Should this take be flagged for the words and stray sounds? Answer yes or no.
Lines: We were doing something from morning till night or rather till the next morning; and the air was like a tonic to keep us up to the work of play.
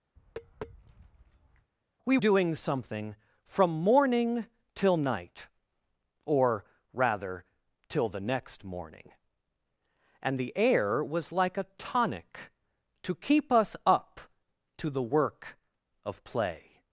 yes